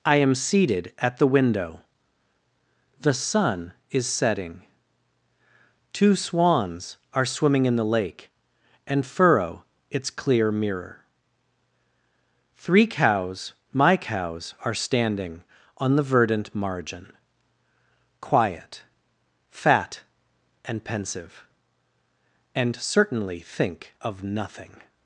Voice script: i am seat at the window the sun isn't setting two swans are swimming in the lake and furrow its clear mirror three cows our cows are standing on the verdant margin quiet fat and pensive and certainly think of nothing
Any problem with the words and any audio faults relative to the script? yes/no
yes